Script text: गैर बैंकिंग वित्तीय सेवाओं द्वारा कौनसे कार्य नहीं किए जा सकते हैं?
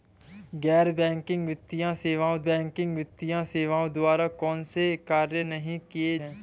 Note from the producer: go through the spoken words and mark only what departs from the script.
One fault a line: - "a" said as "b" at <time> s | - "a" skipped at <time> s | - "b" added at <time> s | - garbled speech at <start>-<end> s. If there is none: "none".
- "बैंकिंग वित्तीय सेवाओं" added at 2.4 s
- "जा सकते" skipped at 6.2 s